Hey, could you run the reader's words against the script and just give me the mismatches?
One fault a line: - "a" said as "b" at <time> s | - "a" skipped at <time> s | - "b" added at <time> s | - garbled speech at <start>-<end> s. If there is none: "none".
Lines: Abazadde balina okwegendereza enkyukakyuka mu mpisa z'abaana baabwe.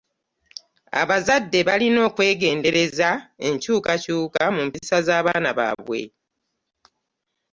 none